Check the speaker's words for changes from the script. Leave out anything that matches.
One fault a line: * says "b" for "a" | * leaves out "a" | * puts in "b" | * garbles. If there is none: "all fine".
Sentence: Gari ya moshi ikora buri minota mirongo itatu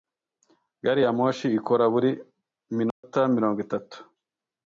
all fine